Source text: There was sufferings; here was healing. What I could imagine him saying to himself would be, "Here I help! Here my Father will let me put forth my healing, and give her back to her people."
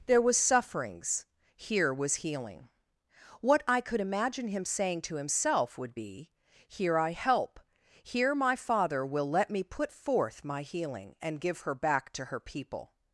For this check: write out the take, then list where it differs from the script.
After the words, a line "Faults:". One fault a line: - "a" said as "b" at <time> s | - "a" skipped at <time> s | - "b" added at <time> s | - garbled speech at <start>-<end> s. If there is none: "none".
There was sufferings; here was healing. What I could imagine him saying to himself would be, "Here I help! Here my Father will let me put forth my healing, and give her back to her people."
Faults:
none